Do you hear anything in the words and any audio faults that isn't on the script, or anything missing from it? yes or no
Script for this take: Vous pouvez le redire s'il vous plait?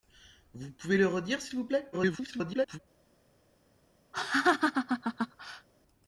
yes